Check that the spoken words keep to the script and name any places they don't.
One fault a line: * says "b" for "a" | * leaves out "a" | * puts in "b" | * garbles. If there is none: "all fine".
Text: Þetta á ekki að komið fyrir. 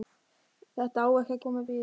all fine